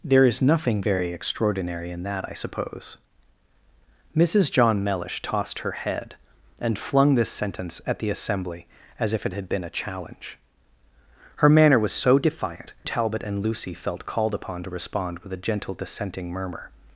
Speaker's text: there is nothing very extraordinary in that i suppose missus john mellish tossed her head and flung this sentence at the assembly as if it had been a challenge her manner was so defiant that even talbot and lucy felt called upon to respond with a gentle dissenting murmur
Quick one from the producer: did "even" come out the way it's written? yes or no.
no